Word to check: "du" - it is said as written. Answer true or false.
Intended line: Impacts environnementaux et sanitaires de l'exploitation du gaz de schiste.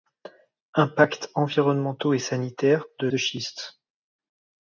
false